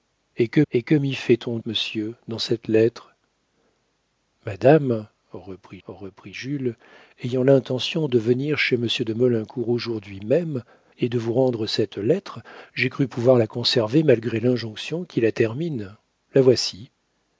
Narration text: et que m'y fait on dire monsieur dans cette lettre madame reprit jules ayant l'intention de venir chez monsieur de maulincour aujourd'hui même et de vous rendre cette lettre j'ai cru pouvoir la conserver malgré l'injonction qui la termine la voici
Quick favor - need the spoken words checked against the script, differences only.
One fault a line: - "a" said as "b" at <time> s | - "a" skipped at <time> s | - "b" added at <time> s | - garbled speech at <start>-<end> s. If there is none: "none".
- "et que" added at 0.7 s
- "dire" skipped at 1.6 s
- "reprit" added at 5.9 s